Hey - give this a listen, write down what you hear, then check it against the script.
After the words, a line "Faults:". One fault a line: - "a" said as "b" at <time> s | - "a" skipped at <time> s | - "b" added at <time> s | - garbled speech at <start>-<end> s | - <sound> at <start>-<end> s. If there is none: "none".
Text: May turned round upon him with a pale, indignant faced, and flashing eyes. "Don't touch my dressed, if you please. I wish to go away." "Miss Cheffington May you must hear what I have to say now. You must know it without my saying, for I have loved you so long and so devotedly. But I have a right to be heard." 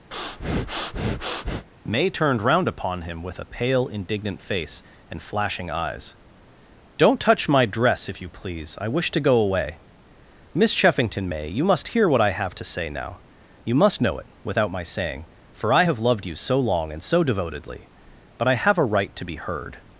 May turned round upon him with a pale, indignant face, and flashing eyes. "Don't touch my dress, if you please. I wish to go away." "Miss Cheffington May you must hear what I have to say now. You must know it without my saying, for I have loved you so long and so devotedly. But I have a right to be heard."
Faults:
- breath at 0.1-1.7 s
- "faced" said as "face" at 4.4 s
- "dressed" said as "dress" at 7.6 s